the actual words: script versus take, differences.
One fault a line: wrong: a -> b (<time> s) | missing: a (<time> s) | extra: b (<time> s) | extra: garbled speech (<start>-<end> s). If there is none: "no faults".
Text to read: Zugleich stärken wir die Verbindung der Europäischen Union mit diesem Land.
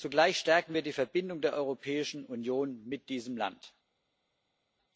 no faults